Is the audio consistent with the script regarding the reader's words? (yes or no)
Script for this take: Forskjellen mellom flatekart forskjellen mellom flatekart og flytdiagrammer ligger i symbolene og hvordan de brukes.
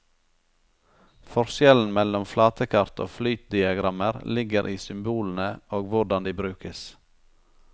no